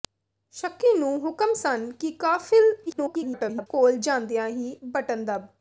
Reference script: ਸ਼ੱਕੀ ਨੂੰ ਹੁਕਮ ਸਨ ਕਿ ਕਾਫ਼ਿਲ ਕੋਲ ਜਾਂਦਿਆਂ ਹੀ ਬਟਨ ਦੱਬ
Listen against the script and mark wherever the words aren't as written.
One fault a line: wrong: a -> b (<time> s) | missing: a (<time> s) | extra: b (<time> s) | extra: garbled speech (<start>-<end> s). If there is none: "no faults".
extra: garbled speech (2.9-3.7 s)